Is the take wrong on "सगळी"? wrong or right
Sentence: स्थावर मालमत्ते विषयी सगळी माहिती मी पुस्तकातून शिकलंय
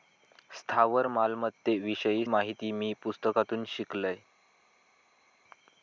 wrong